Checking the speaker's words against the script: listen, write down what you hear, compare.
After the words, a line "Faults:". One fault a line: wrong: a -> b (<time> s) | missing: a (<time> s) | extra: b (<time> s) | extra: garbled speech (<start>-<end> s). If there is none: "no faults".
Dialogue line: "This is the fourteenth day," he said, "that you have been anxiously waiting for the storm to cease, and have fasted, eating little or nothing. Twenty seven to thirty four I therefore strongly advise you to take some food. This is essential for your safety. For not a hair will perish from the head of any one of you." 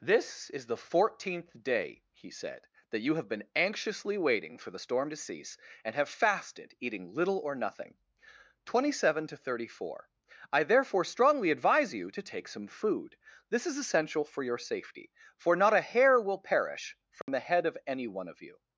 "This is the fourteenth day," he said, "that you have been anxiously waiting for the storm to cease, and have fasted, eating little or nothing. Twenty seven to thirty four I therefore strongly advise you to take some food. This is essential for your safety. For not a hair will perish from the head of any one of you."
Faults:
no faults